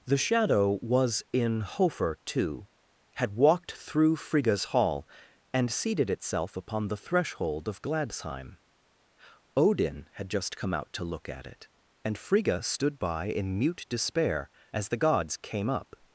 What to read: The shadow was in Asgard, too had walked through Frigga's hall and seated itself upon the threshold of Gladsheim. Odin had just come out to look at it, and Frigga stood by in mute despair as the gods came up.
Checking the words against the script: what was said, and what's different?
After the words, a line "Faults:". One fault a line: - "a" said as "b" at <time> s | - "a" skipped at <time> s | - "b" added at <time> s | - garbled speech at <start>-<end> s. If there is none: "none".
The shadow was in Hofer, too had walked through Frigga's hall and seated itself upon the threshold of Gladsheim. Odin had just come out to look at it, and Frigga stood by in mute despair as the gods came up.
Faults:
- "Asgard" said as "Hofer" at 1.6 s